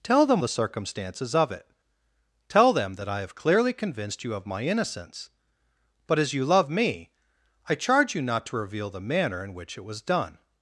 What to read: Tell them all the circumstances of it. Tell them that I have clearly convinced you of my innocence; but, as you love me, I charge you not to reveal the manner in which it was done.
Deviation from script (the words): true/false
true